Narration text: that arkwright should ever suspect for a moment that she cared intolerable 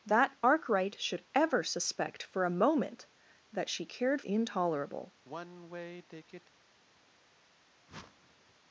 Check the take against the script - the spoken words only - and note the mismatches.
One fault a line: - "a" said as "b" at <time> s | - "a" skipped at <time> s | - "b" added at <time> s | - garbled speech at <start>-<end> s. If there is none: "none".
none